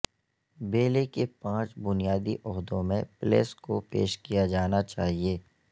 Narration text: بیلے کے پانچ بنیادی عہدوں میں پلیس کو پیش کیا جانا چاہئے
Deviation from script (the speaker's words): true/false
false